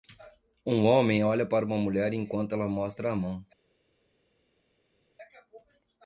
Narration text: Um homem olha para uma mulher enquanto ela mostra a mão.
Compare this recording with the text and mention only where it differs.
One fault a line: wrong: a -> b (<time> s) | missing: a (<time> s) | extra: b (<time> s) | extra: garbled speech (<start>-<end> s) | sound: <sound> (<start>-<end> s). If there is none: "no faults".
no faults